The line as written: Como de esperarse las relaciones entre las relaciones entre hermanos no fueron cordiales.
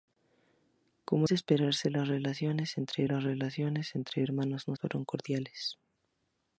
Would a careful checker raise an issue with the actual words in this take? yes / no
no